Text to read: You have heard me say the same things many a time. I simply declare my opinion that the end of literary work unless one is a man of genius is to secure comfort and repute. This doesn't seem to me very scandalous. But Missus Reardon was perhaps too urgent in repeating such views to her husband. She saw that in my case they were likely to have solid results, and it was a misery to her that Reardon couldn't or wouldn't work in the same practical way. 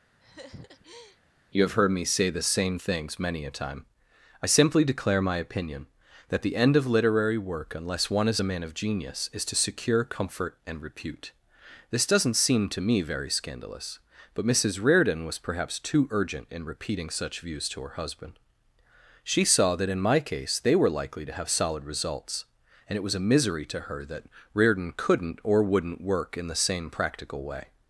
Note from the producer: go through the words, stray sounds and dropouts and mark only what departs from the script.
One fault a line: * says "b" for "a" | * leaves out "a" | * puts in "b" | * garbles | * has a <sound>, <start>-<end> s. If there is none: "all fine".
* has a laugh, 0.2-1.2 s